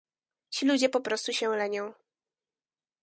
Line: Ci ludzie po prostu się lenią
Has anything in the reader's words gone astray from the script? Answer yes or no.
no